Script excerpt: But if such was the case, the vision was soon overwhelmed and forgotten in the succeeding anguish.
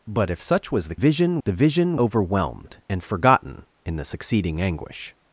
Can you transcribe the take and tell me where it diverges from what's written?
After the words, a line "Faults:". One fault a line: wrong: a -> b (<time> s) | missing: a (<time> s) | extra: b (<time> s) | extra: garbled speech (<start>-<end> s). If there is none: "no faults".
But if such was the vision, the vision overwhelmed and forgotten in the succeeding anguish.
Faults:
wrong: case -> vision (0.9 s)
missing: was soon (2.0 s)